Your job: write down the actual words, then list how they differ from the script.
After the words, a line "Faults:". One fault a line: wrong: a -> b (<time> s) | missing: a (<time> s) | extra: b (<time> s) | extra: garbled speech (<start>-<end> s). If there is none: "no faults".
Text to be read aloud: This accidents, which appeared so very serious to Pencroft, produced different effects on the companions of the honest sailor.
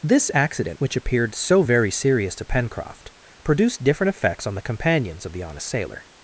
This accident, which appeared so very serious to Pencroft, produced different effects on the companions of the honest sailor.
Faults:
wrong: accidents -> accident (0.3 s)